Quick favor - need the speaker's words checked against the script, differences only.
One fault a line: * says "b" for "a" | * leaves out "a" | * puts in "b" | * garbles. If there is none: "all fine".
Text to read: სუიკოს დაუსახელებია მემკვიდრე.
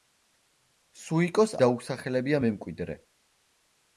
all fine